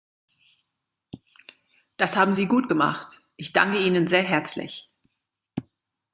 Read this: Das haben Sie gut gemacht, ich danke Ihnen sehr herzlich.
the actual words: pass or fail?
pass